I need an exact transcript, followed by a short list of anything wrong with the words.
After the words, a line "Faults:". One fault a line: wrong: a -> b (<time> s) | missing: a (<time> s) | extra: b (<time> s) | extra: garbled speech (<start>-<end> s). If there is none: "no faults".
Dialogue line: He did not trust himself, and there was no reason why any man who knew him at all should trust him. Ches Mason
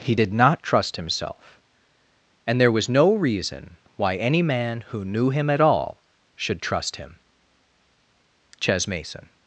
He did not trust himself, and there was no reason why any man who knew him at all should trust him. Ches Mason
Faults:
no faults